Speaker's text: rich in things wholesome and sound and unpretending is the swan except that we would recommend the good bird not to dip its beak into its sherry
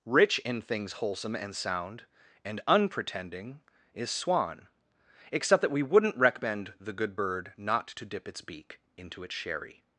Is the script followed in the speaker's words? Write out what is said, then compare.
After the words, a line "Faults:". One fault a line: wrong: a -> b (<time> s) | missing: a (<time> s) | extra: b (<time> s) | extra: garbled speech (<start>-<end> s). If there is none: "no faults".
rich in things wholesome and sound and unpretending is swan except that we wouldn't recommend the good bird not to dip its beak into its sherry
Faults:
missing: the (4.1 s)
wrong: would -> wouldn't (5.8 s)